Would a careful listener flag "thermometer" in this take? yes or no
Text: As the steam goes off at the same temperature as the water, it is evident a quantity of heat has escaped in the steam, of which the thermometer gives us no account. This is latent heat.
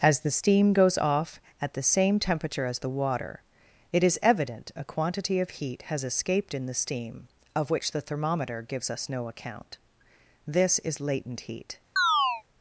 no